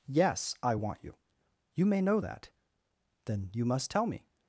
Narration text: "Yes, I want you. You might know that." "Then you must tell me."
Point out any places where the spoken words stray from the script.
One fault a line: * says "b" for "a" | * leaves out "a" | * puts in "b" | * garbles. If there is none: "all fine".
* says "may" for "might"